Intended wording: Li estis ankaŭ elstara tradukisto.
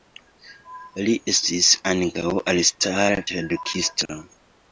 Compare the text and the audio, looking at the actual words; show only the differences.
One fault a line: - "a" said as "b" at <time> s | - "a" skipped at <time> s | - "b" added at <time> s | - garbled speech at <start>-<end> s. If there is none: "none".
none